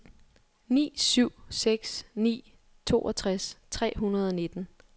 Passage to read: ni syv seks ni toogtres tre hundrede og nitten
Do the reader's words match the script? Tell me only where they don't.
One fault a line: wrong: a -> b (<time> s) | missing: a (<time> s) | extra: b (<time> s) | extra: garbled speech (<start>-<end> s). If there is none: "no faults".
no faults